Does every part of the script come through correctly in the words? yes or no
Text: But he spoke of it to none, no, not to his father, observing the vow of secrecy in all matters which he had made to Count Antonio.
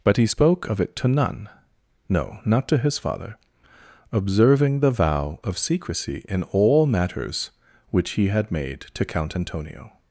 yes